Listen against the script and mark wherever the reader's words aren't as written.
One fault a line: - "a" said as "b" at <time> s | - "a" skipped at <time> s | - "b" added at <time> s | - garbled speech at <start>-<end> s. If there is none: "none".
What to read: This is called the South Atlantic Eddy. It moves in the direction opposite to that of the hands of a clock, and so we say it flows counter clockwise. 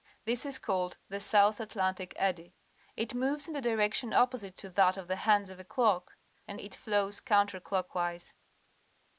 - "so we say" skipped at 6.6 s